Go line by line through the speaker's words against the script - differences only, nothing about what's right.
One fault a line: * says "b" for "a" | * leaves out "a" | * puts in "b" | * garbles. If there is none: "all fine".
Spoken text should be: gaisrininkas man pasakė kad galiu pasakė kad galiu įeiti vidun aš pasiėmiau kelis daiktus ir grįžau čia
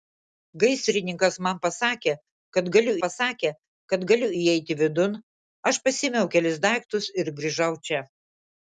all fine